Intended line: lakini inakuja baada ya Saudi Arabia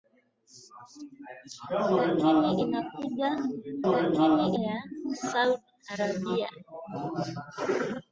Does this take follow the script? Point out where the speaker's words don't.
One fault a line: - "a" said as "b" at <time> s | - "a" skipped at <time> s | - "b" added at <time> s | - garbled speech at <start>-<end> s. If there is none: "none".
- "baada" said as "lakini" at 3.9 s